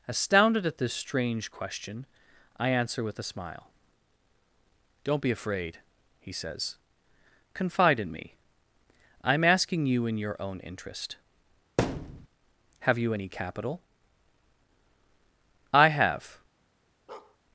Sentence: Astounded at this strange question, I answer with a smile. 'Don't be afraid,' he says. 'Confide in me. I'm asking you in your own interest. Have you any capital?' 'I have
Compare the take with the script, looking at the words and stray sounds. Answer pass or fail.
fail